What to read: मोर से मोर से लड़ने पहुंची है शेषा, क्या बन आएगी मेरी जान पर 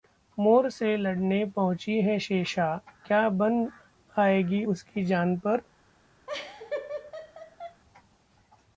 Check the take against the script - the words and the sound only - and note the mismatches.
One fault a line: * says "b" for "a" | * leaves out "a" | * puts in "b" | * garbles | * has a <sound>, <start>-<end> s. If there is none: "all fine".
* leaves out "मोर से"
* says "उसकी" for "मेरी"
* has a laugh, 6.3-7.8 s